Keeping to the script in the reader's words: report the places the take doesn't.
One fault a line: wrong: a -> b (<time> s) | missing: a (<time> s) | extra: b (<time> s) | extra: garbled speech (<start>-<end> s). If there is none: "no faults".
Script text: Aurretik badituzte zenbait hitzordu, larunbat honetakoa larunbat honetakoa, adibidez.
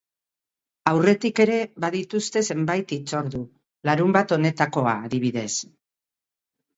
extra: ere (1.4 s)
missing: larunbat honetakoa (5.0 s)